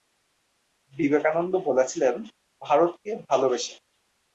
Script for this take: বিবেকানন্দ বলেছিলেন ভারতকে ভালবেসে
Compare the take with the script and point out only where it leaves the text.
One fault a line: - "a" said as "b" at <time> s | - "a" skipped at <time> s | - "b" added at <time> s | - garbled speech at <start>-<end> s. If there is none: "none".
none